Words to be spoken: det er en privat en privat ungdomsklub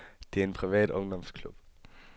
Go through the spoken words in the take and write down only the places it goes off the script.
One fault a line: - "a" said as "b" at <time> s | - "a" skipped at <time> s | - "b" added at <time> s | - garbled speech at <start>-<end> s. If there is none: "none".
- "en privat" skipped at 0.9 s